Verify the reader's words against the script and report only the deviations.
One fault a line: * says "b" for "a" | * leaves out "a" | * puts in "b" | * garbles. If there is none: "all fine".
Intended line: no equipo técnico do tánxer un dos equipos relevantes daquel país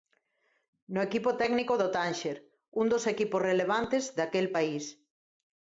all fine